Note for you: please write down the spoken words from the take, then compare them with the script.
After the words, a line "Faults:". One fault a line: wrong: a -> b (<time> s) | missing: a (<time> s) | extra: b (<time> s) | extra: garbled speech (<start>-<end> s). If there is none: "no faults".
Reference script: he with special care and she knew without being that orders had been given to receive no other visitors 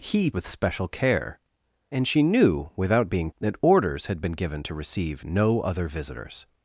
he with special care and she knew without being that orders had been given to receive no other visitors
Faults:
no faults